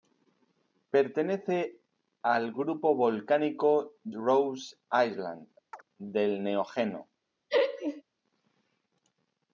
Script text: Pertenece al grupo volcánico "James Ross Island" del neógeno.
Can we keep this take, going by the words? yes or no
no